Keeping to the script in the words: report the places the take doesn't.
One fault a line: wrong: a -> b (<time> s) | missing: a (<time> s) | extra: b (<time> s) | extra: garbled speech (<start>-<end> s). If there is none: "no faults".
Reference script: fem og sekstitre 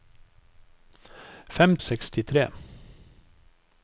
no faults